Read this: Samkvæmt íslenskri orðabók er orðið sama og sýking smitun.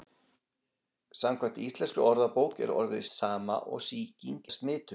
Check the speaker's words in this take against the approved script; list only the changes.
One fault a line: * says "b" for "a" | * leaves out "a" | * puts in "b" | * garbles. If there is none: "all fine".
all fine